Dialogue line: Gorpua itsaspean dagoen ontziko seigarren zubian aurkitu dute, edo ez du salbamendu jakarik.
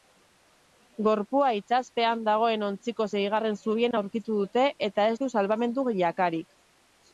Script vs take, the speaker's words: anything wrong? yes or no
yes